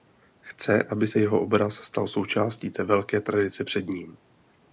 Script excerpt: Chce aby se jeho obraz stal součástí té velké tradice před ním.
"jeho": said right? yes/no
yes